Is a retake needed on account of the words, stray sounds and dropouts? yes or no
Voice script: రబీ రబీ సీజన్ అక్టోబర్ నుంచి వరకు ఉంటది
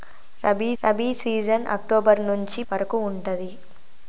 no